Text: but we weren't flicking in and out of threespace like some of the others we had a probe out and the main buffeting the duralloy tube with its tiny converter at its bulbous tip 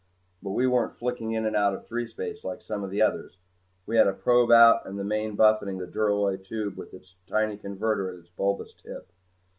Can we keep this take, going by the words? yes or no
yes